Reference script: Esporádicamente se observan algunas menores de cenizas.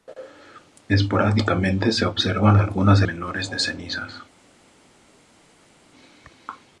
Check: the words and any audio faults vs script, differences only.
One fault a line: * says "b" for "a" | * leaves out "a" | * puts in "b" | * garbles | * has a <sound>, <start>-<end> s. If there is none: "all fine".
all fine